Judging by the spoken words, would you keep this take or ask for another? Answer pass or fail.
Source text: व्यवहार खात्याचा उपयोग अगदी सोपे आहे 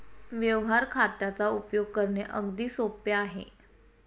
fail